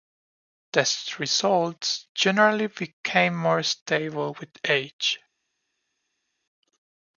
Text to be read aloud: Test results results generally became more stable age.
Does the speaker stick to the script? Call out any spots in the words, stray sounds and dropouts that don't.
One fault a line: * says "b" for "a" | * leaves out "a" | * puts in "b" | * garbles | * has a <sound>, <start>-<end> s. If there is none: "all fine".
* leaves out "results"
* puts in "with"